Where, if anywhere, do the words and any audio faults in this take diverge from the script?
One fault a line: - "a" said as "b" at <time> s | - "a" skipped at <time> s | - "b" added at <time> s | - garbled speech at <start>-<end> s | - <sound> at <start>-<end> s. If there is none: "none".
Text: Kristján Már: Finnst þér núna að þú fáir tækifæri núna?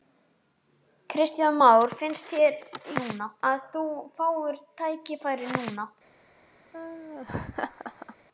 - laugh at 6.7-8.2 s